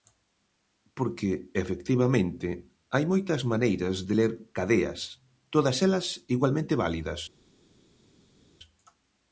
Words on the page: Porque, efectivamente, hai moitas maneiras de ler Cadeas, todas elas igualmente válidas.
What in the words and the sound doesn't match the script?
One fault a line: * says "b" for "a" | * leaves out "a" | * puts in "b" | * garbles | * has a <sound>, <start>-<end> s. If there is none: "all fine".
all fine